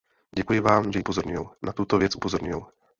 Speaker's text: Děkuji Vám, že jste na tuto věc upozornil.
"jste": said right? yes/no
no